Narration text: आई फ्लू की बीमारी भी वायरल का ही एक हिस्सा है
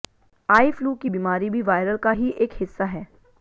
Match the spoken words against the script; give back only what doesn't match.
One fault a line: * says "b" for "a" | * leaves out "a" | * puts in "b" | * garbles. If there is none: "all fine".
all fine